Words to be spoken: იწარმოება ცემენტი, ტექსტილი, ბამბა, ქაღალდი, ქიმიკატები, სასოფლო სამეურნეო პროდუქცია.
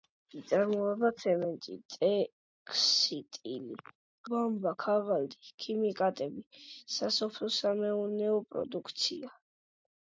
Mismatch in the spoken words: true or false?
false